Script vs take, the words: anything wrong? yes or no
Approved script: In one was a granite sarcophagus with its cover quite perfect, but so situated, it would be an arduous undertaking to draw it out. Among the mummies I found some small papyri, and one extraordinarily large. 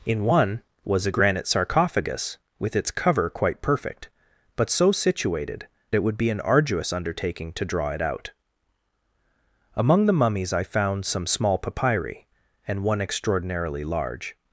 no